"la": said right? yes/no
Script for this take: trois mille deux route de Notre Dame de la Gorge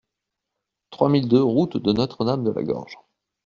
yes